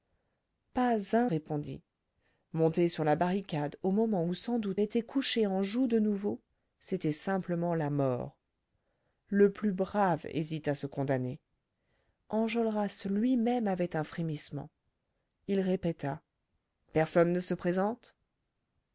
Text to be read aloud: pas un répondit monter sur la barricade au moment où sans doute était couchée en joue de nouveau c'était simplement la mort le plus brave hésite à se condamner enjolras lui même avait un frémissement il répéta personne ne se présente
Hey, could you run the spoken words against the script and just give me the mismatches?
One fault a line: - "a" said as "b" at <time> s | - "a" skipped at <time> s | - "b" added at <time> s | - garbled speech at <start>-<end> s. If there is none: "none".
none